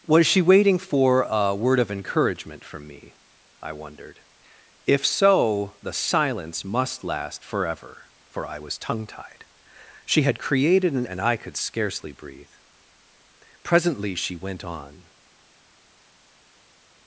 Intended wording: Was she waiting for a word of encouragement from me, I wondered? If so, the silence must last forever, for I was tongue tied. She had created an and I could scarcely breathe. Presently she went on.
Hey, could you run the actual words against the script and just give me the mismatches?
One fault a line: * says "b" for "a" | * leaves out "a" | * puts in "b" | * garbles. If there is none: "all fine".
all fine